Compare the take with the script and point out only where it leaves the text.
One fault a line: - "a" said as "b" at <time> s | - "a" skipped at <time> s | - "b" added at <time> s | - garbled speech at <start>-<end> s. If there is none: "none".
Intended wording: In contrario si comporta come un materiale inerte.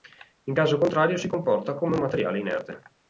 - "caso" added at 0.5 s